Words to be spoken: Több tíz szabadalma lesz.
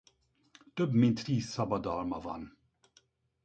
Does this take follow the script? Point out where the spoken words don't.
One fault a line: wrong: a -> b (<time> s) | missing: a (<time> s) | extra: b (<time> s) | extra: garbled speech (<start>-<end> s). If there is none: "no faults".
extra: mint (0.9 s)
wrong: lesz -> van (2.2 s)